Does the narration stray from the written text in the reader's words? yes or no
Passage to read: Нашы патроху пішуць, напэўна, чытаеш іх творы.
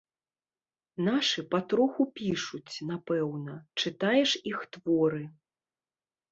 no